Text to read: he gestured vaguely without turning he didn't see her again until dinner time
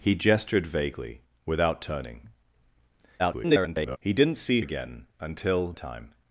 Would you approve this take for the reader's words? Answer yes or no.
no